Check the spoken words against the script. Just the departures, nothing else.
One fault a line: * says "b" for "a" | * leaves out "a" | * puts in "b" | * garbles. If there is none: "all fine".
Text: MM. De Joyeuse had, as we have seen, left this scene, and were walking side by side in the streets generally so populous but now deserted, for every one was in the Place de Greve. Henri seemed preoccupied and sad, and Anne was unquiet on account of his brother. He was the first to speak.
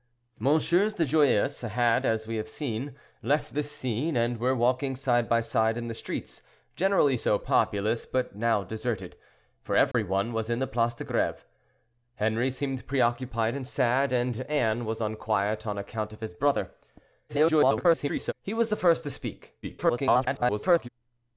* garbles
* garbles